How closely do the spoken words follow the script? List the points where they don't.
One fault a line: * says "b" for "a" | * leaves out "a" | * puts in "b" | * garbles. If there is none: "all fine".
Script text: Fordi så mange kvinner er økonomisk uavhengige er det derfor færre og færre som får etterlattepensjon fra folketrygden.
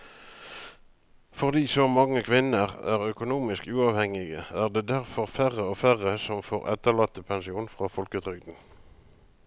all fine